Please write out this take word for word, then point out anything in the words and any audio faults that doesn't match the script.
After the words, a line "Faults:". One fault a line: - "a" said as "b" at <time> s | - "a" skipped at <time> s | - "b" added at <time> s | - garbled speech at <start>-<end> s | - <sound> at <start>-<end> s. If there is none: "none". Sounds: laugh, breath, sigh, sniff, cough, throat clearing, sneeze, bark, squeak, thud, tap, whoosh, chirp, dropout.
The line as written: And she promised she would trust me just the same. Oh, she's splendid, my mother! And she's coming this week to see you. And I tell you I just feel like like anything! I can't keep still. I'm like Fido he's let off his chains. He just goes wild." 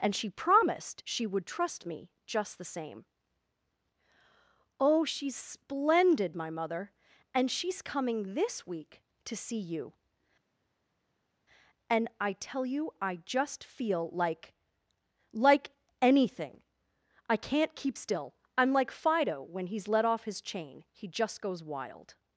And she promised she would trust me just the same. Oh, she's splendid, my mother! And she's coming this week to see you. And I tell you I just feel like like anything! I can't keep still. I'm like Fido when he's let off his chain. He just goes wild."
Faults:
- "when" added at 19.4 s
- "chains" said as "chain" at 20.4 s